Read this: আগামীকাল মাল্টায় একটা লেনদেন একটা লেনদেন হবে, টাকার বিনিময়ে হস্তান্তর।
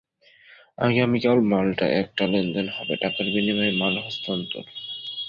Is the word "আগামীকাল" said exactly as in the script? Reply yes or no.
yes